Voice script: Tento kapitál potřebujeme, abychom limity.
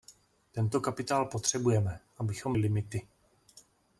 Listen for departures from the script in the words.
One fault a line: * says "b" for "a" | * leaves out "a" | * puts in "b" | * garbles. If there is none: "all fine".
all fine